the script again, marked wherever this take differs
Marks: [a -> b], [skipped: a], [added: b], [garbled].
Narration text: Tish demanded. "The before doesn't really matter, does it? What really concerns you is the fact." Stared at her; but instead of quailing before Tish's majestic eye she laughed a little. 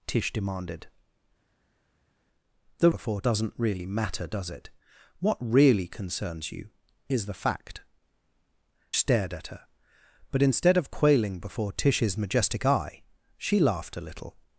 Tish demanded. "The before doesn't really matter, does it? What really concerns you is the fact." Stared at her; but instead of quailing before Tish's majestic eye she laughed a little.